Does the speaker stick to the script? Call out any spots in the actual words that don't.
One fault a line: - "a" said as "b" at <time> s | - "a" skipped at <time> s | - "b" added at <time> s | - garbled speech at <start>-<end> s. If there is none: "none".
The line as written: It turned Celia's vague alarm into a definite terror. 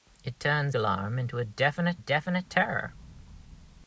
- "Celia's vague" skipped at 0.7 s
- "definite" added at 2.0 s